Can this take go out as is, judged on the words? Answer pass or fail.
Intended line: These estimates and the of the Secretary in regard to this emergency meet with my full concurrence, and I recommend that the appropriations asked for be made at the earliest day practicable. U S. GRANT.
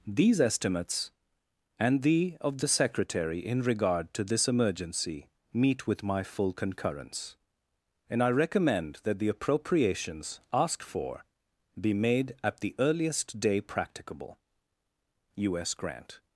pass